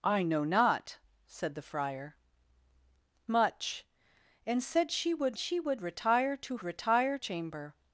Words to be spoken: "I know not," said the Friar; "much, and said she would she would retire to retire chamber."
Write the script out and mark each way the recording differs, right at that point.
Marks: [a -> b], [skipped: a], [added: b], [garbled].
"I know not," said the Friar; "much, and said she would she would retire to retire chamber."